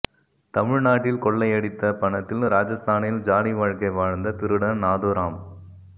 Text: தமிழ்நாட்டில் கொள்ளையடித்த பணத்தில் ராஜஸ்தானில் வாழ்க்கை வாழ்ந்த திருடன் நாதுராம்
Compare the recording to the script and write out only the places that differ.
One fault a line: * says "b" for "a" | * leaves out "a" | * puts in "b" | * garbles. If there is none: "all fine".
* puts in "ஜாலி"